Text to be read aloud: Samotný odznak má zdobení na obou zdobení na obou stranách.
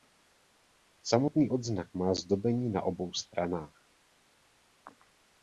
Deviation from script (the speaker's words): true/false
true